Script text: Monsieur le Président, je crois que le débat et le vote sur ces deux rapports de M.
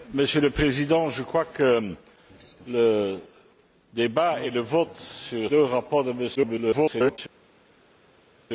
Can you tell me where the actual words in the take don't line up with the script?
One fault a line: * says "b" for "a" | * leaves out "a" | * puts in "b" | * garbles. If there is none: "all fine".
* leaves out "ces"
* garbles